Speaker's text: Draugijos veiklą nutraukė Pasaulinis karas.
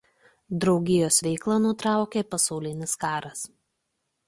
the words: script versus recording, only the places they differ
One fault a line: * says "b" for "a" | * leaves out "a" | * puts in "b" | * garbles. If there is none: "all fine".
all fine